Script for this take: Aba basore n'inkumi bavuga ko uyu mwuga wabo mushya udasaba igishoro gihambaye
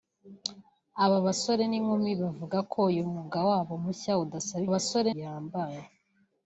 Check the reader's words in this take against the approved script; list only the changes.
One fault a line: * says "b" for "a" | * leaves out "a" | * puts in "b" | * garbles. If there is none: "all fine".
* says "basore" for "igishoro"